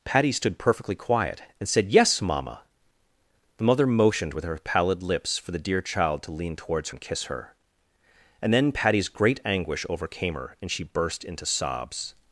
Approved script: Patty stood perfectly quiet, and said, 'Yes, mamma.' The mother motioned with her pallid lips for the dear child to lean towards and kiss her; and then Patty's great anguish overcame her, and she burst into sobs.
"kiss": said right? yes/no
yes